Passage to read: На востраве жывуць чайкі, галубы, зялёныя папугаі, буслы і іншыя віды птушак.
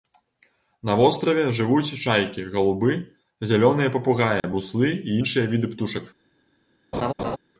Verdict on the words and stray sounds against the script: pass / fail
fail